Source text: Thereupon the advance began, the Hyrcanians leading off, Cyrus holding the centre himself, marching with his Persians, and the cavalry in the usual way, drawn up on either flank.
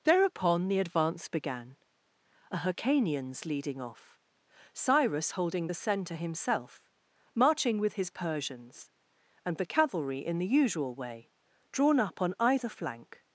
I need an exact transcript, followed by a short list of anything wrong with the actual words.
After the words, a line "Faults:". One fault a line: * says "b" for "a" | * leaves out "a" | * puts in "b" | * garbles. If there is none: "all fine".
Thereupon the advance began, a Hyrcanians leading off, Cyrus holding the centre himself, marching with his Persians, and the cavalry in the usual way, drawn up on either flank.
Faults:
* says "a" for "the"